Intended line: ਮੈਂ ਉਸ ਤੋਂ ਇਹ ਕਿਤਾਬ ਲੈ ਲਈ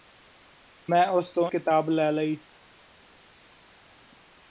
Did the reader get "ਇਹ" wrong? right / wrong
wrong